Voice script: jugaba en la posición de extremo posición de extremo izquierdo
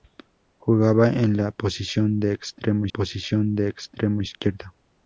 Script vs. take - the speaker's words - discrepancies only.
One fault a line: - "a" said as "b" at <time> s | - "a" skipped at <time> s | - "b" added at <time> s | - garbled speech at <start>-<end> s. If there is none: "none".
none